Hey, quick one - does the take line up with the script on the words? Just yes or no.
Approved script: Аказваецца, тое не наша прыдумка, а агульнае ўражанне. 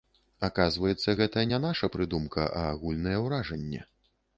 no